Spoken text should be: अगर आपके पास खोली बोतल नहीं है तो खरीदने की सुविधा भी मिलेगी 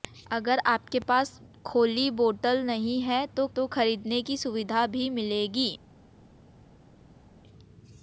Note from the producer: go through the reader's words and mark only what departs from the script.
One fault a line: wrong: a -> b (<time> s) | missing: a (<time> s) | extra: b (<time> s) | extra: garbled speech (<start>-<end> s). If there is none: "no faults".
extra: तो (3.5 s)